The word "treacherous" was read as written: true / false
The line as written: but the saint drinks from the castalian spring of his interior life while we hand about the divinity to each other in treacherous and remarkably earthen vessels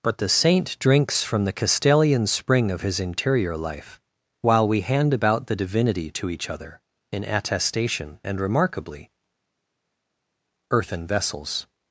false